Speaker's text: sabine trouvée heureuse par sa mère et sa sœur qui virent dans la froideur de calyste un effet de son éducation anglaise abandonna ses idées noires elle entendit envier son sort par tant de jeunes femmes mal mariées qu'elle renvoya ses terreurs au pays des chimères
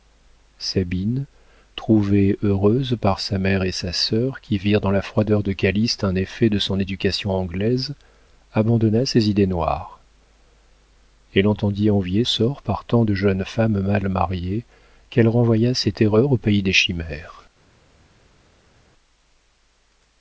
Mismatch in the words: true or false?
true